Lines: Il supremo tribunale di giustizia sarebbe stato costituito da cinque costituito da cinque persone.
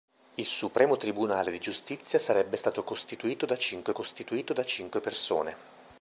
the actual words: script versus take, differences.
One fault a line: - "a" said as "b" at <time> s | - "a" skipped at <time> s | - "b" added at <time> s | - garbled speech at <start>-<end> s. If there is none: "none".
none